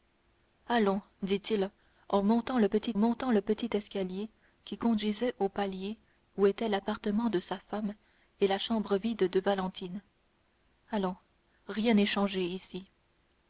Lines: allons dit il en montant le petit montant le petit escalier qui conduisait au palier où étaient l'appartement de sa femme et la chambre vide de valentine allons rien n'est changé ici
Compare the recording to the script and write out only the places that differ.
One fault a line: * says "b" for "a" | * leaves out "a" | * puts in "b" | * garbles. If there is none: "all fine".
all fine